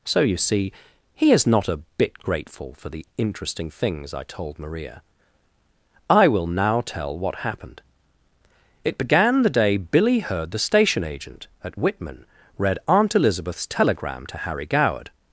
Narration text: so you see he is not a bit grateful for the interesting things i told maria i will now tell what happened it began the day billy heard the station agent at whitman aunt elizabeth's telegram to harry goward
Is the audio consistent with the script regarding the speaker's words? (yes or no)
no